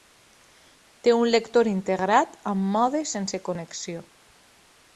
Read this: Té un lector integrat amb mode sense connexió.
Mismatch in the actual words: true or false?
false